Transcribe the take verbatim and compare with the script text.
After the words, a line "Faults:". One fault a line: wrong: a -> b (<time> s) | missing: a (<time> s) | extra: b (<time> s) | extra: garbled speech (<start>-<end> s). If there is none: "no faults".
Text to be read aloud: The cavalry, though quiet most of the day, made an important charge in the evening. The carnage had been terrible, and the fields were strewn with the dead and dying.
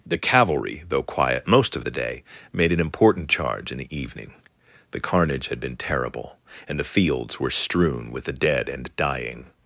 The cavalry, though quiet most of the day, made an important charge in the evening. The carnage had been terrible, and the fields were strewn with the dead and dying.
Faults:
no faults